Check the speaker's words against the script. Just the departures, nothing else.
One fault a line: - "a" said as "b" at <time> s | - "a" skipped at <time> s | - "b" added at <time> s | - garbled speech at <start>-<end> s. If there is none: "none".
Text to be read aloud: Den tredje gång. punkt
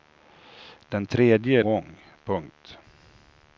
none